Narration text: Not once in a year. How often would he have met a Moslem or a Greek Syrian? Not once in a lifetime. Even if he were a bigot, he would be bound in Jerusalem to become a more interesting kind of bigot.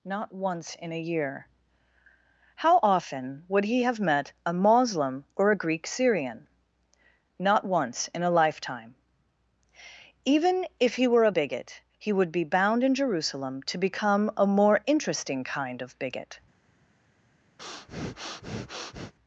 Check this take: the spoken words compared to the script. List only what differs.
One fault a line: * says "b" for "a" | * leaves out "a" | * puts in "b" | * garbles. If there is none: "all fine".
all fine